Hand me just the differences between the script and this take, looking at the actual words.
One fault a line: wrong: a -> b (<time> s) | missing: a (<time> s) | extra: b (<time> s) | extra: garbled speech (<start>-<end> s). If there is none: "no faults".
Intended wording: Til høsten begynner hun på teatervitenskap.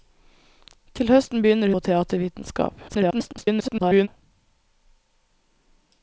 missing: hun (1.7 s)
extra: garbled speech (2.9-4.1 s)